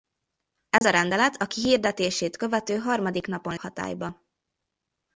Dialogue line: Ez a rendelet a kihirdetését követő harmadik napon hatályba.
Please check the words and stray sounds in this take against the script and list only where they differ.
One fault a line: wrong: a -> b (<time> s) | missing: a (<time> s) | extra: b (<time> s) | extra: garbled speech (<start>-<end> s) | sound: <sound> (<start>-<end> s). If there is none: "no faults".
sound: dropout (0.8-0.8 s)